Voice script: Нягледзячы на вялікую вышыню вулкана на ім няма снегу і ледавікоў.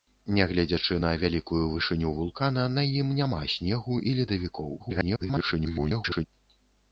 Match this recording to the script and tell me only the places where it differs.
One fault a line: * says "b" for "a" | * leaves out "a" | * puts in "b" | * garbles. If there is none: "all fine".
* garbles